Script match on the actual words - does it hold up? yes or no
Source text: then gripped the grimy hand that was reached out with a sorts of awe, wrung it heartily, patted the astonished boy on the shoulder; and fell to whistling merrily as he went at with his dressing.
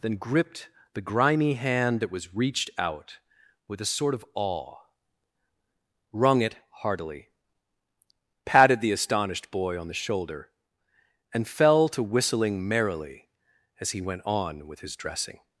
no